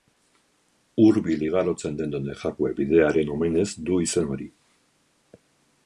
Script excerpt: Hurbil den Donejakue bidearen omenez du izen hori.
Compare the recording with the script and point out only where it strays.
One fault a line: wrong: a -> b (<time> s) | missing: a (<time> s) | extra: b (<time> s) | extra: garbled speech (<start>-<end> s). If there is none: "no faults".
extra: igarotzen (1.5 s)